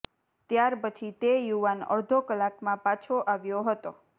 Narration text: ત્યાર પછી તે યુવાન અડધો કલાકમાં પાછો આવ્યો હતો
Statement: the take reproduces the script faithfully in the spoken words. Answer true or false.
true